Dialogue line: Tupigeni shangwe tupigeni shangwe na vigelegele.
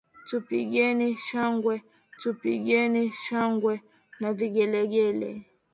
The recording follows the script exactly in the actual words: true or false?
true